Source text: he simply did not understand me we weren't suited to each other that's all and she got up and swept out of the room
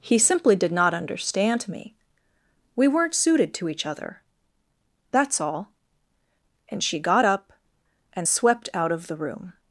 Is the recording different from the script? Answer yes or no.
no